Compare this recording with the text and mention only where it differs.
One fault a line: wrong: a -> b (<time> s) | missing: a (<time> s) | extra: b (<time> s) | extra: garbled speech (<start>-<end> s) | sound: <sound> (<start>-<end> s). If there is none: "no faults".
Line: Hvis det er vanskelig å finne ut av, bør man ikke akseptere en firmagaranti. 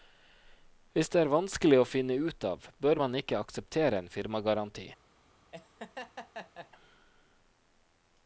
sound: laugh (5.5-6.7 s)